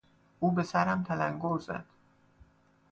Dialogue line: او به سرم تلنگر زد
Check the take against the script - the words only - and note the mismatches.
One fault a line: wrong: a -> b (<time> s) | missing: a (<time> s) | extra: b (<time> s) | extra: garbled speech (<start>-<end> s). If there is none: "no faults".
no faults